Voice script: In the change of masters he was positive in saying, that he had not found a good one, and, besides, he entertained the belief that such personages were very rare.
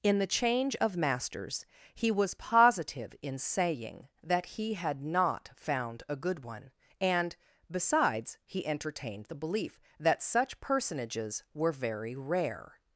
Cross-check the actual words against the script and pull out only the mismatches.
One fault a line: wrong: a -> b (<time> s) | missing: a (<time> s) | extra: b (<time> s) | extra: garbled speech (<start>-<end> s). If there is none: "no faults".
no faults